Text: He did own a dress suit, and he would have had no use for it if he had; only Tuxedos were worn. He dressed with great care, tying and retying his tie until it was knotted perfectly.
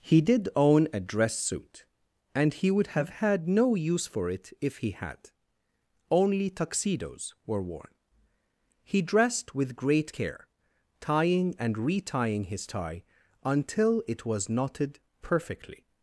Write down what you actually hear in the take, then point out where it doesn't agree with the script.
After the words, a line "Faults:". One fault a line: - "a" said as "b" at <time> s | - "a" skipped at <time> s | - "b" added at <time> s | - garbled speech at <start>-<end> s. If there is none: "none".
He did own a dress suit, and he would have had no use for it if he had; only Tuxedos were worn. He dressed with great care, tying and retying his tie until it was knotted perfectly.
Faults:
none